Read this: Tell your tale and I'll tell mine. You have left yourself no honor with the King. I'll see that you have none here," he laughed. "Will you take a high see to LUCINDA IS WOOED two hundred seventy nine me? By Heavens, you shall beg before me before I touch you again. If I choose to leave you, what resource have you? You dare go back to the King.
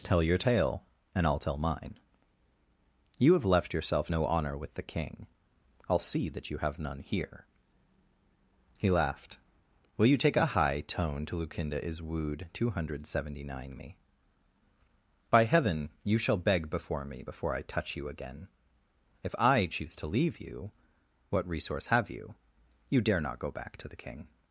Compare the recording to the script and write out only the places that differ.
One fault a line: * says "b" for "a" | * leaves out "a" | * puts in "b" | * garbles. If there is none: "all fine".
* says "tone" for "see"
* says "Heaven" for "Heavens"
* puts in "not"